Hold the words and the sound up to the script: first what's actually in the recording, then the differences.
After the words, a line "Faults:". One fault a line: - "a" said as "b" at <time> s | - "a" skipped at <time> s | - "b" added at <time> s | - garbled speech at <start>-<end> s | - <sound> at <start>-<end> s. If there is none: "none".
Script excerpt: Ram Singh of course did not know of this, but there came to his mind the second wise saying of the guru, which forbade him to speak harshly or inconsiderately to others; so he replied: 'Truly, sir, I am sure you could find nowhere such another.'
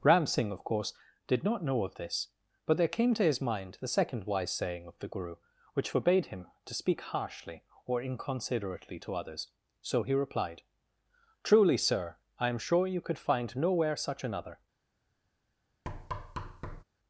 Ram Singh of course did not know of this, but there came to his mind the second wise saying of the guru, which forbade him to speak harshly or inconsiderately to others; so he replied: 'Truly, sir, I am sure you could find nowhere such another.'
Faults:
- thud at 15.8-16.8 s